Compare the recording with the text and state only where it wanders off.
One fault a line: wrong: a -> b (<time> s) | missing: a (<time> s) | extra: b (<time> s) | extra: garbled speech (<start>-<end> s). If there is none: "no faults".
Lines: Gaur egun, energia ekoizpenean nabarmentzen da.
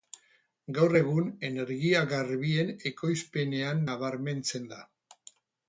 extra: garbien (2.1 s)